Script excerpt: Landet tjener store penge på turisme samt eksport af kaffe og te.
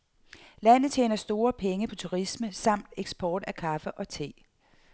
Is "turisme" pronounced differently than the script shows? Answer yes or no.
no